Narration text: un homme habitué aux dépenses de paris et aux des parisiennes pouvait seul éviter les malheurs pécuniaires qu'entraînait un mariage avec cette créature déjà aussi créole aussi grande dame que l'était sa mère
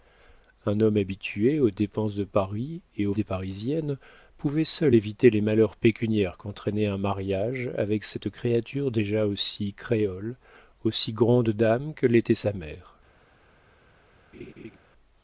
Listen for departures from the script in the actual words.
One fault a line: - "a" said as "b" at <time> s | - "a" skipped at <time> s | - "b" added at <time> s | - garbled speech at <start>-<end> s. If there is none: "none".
none